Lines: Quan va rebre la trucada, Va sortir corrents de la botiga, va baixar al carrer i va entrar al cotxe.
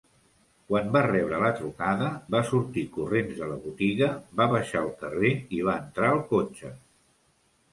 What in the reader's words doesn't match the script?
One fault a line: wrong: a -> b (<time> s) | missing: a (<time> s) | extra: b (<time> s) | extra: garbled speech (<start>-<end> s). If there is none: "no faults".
no faults